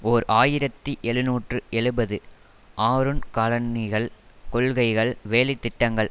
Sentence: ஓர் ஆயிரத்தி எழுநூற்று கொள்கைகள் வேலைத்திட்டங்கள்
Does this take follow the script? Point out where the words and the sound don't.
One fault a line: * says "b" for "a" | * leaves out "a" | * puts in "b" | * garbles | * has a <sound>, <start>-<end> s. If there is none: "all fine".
* puts in "எழுபது ஆறுன் காலனிகள்"